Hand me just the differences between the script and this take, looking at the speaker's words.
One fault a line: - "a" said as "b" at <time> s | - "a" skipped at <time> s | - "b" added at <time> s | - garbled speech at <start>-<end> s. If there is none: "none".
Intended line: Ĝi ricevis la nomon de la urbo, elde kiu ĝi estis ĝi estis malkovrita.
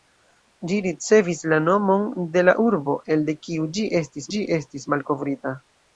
none